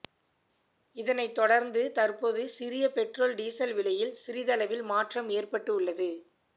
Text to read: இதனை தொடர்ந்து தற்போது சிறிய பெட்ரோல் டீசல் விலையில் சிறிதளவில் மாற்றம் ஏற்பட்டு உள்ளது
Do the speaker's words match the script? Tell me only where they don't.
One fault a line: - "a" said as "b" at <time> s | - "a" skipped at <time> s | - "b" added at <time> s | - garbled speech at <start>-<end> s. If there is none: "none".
none